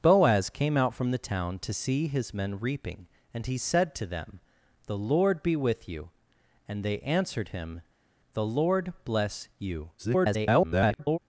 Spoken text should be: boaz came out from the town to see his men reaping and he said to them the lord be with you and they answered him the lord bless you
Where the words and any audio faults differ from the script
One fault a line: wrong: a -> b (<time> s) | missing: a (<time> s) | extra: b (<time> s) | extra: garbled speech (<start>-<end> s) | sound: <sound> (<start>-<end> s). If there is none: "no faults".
extra: garbled speech (10.0-11.2 s)